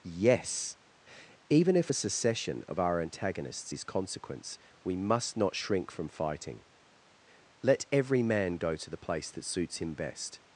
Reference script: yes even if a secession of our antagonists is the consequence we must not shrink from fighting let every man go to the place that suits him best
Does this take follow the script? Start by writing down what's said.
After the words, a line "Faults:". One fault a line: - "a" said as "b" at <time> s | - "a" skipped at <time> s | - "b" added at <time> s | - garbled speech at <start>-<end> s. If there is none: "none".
yes even if a secession of our antagonists is consequence we must not shrink from fighting let every man go to the place that suits him best
Faults:
- "the" skipped at 3.8 s